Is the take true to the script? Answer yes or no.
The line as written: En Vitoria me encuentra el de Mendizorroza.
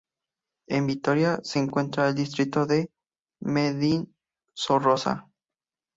no